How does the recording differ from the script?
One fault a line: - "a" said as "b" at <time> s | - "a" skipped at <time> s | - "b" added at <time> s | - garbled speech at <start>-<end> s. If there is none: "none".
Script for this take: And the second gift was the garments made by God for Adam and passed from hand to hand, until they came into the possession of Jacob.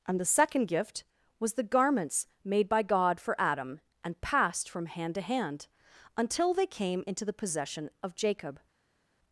none